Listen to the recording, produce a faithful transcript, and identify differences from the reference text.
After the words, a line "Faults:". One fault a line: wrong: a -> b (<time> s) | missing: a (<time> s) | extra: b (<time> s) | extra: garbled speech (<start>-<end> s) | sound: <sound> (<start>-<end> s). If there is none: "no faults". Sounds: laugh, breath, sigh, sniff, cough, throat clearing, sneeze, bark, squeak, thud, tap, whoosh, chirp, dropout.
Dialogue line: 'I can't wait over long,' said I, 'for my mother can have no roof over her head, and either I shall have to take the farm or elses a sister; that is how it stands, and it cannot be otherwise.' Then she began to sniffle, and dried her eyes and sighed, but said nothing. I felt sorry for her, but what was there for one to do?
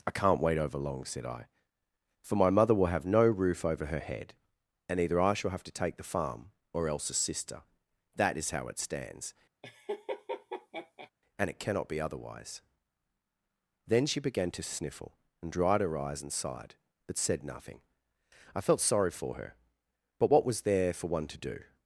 'I can't wait over long,' said I, 'for my mother will have no roof over her head, and either I shall have to take the farm or else a sister; that is how it stands, and it cannot be otherwise.' Then she began to sniffle, and dried her eyes and sighed, but said nothing. I felt sorry for her, but what was there for one to do?
Faults:
wrong: can -> will (2.8 s)
wrong: elses -> else (6.9 s)
sound: laugh (9.6-11.1 s)